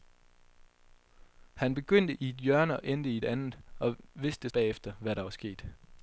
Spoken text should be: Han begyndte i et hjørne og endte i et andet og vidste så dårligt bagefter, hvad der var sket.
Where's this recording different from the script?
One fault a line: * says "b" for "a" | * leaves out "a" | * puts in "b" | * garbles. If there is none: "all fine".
* leaves out "så dårligt"